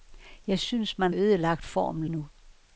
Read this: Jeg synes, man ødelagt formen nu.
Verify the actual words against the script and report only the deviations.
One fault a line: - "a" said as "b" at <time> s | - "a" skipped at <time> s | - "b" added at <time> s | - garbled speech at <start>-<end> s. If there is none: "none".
none